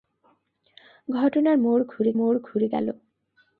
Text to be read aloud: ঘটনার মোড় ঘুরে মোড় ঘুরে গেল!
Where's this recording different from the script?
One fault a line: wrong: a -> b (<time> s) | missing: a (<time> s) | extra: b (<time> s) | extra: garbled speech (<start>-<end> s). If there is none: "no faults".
no faults